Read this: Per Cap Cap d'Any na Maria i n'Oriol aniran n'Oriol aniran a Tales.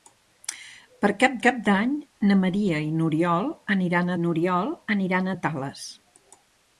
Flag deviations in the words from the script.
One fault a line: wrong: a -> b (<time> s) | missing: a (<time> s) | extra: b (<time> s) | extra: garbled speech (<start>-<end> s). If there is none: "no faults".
no faults